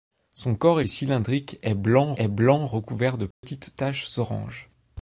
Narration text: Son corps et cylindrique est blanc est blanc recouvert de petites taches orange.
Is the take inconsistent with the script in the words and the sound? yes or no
yes